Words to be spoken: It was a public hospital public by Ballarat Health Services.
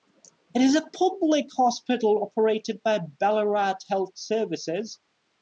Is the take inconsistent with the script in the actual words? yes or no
yes